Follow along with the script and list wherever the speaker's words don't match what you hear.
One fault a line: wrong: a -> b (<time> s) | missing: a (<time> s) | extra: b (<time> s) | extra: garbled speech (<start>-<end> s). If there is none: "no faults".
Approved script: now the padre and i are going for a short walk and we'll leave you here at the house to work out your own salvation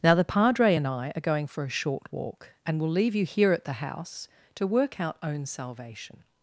missing: your (5.2 s)